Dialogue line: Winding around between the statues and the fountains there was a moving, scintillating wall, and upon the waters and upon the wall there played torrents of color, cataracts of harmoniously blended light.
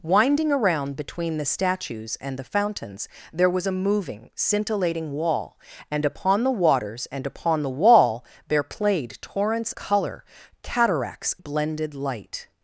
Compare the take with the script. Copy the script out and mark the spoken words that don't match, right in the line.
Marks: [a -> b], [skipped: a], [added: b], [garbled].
Winding around between the statues and the fountains there was a moving, scintillating wall, and upon the waters and upon the wall there played torrents [skipped: of] color, cataracts [skipped: of harmoniously] blended light.